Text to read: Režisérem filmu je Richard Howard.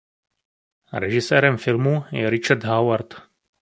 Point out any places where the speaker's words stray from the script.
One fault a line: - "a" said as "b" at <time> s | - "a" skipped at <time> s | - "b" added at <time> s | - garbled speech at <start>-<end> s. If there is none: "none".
none